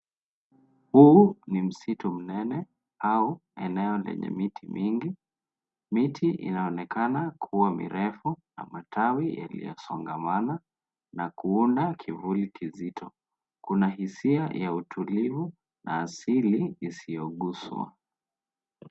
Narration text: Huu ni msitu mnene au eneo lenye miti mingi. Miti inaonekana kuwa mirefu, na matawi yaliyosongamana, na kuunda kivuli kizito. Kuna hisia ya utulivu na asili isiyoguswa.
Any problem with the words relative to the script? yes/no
no